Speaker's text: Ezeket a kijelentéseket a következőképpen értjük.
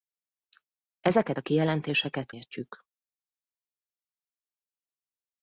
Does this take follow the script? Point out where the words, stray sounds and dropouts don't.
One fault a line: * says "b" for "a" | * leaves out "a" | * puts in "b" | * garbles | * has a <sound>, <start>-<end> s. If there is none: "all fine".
* leaves out "a következőképpen"